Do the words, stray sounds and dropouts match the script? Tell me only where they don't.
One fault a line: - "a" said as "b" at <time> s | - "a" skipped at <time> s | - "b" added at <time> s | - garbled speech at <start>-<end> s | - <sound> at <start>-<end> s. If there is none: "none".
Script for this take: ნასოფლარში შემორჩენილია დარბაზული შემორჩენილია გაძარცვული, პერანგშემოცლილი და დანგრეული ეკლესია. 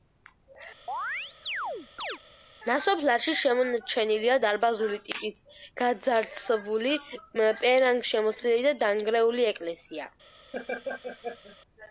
- chirp at 0.9-2.2 s
- "შემორჩენილია" said as "ტიპის" at 5.1 s
- laugh at 10.5-11.6 s